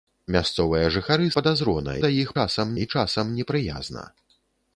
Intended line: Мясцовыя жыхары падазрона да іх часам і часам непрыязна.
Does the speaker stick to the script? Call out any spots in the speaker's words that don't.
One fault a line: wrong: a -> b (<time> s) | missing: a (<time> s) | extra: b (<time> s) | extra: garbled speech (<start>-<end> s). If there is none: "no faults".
no faults